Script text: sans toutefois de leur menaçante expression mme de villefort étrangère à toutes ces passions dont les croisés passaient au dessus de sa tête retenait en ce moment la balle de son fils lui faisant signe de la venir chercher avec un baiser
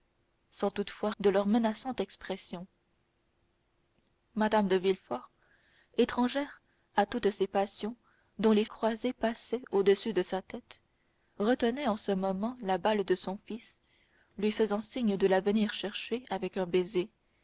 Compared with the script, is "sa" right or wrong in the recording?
right